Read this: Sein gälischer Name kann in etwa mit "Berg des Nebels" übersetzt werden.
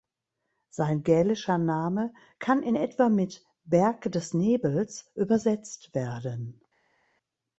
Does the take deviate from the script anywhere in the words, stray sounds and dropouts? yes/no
no